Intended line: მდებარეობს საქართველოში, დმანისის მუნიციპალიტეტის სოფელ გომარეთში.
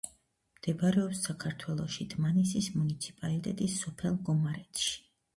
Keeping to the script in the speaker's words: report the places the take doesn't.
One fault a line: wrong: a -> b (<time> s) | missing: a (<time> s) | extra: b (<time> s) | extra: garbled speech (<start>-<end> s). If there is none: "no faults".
no faults